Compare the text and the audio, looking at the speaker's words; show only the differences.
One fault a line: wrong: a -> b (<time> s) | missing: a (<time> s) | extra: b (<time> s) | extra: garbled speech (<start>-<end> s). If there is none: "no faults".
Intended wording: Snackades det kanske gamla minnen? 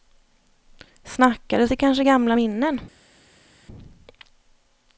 no faults